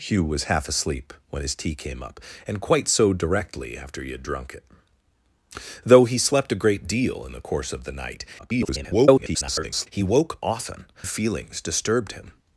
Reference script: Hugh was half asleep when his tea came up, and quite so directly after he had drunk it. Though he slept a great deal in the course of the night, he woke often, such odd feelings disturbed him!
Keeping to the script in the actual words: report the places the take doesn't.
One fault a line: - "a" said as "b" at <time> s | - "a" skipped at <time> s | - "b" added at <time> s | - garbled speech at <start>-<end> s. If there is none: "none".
- garbled speech at 8.4-9.9 s
- "such odd" skipped at 10.8 s